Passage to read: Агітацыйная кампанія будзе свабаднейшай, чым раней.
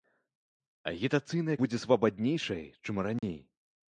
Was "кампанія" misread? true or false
true